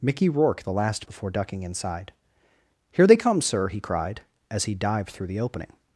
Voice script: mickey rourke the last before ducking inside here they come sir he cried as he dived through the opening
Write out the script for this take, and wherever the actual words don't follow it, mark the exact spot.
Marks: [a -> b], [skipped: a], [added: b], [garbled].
mickey rourke the last before ducking inside here they come sir he cried as he dived through the opening